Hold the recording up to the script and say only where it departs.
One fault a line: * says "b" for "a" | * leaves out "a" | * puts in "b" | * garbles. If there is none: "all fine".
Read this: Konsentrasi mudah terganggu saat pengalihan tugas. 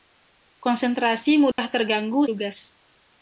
* leaves out "saat pengalihan"